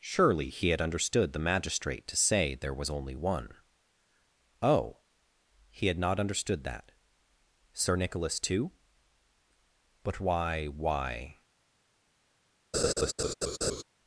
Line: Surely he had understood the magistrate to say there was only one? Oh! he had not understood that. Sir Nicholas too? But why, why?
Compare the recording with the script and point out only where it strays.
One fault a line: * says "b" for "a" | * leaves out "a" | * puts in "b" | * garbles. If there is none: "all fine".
all fine